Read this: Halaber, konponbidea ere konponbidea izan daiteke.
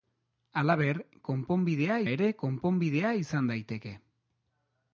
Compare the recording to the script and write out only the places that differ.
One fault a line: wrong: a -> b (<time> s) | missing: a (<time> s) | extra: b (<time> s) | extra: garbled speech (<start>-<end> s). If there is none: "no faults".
no faults